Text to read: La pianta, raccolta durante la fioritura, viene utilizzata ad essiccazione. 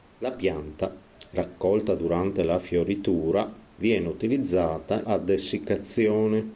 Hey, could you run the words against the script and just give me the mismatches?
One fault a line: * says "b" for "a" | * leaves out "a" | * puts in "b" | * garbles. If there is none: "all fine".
all fine